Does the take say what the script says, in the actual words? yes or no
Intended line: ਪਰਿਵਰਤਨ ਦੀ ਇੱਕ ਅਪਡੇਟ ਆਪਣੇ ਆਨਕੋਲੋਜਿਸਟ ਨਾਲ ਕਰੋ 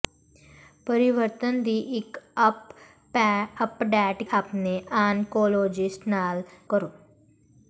yes